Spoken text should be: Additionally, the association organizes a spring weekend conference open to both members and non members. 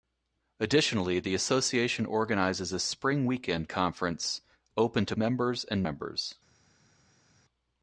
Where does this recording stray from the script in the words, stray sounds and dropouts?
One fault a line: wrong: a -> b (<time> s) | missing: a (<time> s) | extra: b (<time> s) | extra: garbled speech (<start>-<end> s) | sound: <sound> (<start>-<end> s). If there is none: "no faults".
missing: both (5.2 s)
missing: non (5.8 s)